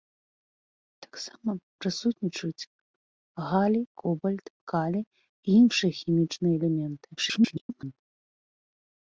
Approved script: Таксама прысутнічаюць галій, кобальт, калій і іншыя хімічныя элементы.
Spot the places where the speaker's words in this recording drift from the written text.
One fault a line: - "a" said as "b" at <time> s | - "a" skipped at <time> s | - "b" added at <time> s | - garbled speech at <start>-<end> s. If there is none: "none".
- garbled speech at 7.2-8.0 s